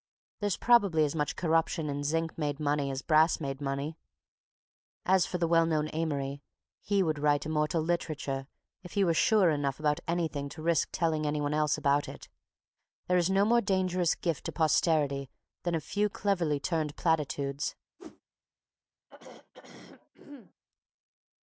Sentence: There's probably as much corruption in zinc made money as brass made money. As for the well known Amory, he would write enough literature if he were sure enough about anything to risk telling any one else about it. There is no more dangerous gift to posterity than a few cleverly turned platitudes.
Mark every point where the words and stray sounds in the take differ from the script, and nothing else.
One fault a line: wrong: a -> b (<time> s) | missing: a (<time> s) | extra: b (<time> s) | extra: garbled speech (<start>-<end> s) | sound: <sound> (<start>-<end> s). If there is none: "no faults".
wrong: enough -> immortal (7.5 s)
sound: whoosh (18.0-18.2 s)
sound: throat clearing (19.1-20.5 s)